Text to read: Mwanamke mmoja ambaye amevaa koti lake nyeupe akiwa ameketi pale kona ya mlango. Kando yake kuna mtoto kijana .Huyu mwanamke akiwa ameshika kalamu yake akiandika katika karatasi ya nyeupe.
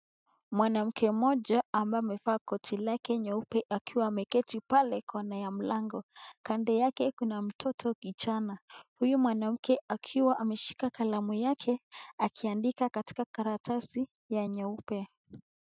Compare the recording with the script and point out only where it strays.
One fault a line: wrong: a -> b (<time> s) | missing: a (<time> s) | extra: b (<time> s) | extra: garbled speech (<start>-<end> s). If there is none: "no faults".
no faults